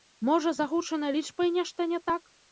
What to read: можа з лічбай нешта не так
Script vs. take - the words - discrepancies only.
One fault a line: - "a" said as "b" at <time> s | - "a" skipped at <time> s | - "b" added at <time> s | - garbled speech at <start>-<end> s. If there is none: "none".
- "агучанай" added at 0.7 s